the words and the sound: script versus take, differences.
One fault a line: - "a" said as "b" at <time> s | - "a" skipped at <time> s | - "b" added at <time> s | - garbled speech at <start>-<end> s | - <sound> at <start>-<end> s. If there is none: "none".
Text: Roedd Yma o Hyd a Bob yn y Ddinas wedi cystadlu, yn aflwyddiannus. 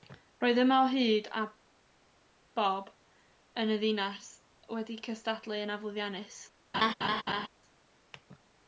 - laugh at 6.7-7.5 s